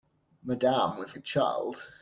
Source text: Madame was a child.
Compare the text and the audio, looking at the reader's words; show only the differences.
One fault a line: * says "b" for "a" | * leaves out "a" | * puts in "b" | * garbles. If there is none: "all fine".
all fine